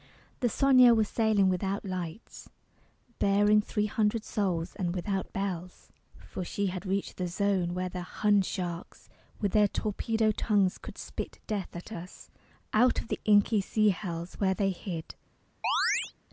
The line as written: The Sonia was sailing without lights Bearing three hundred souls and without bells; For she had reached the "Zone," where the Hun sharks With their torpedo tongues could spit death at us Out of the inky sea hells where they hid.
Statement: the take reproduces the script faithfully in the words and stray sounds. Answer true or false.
false